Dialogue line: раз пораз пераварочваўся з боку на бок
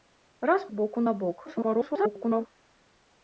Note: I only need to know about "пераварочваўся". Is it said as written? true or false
false